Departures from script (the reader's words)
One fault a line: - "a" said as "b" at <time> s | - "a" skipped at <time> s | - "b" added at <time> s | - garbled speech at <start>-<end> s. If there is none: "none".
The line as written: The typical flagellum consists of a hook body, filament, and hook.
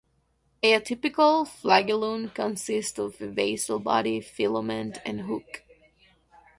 - "The" said as "A" at 0.6 s
- "hook" said as "basal" at 3.3 s